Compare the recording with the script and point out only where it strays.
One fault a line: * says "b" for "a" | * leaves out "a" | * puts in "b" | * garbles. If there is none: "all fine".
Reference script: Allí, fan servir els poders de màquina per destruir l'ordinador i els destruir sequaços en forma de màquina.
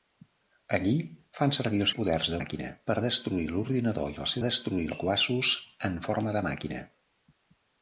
all fine